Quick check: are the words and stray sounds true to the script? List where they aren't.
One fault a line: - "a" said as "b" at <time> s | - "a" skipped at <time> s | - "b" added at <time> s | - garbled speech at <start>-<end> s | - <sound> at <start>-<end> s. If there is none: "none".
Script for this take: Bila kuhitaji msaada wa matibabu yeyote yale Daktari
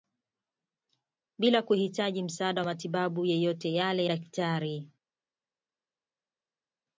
none